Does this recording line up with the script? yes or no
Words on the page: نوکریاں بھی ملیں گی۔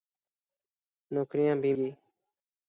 no